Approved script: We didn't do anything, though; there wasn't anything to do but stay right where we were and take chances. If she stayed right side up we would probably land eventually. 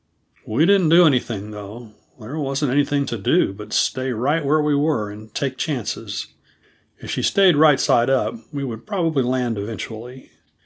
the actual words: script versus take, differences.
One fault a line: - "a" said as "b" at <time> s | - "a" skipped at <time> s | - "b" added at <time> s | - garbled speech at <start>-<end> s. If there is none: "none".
none